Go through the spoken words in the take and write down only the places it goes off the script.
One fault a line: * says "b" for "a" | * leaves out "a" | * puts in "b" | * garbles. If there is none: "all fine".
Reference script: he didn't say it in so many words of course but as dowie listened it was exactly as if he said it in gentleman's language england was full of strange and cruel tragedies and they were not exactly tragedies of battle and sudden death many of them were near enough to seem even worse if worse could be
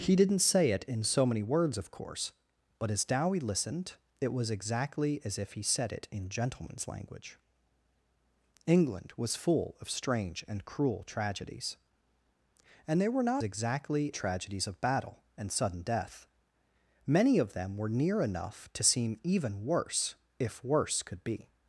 all fine